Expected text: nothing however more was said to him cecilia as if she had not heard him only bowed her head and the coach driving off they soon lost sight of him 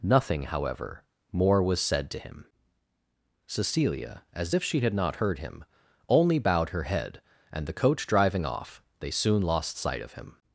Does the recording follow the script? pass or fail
pass